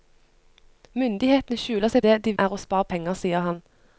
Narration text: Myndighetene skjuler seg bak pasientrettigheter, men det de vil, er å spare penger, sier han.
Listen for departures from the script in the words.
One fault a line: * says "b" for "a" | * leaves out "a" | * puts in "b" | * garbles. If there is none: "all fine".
* leaves out "bak pasientrettigheter men"
* leaves out "vil"